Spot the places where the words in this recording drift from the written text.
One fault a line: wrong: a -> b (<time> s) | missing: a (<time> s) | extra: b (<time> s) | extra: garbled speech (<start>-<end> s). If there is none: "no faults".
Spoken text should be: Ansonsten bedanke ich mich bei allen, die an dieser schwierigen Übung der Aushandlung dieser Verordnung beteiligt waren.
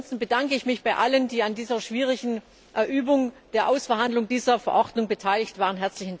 no faults